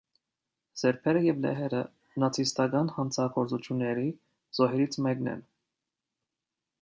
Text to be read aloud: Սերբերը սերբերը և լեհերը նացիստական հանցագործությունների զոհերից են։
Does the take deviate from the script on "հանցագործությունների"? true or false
false